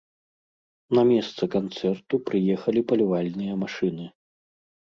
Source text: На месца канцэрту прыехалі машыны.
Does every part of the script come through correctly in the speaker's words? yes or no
no